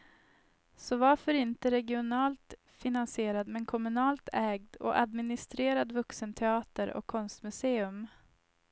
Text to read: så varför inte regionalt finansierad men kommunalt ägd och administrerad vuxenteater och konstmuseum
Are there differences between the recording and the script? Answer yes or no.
no